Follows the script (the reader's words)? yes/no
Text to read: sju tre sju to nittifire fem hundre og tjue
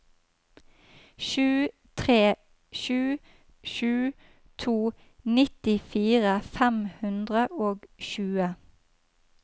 no